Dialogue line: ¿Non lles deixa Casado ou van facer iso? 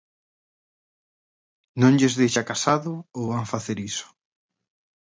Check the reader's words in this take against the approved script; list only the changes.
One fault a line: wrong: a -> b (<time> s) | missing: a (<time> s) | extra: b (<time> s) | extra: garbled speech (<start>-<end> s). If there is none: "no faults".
no faults